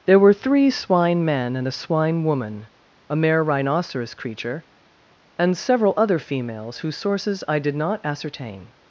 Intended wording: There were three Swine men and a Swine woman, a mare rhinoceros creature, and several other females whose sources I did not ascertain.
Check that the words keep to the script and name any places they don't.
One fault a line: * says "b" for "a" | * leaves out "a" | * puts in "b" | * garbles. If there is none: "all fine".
all fine